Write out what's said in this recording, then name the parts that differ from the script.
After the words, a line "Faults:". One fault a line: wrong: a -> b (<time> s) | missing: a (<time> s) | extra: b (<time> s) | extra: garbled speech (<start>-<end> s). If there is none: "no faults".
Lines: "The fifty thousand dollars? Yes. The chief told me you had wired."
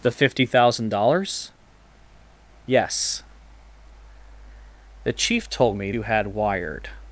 "The fifty thousand dollars? Yes. The chief told me you had wired."
Faults:
no faults